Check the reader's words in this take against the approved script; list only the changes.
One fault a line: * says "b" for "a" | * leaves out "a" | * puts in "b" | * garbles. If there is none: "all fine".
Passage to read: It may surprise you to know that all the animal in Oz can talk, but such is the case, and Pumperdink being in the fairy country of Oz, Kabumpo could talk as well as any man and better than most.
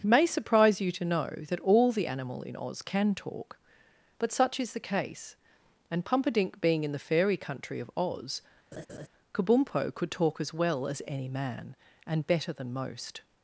all fine